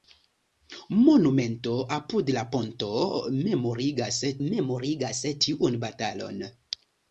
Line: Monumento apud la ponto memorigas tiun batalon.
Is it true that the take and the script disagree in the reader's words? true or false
true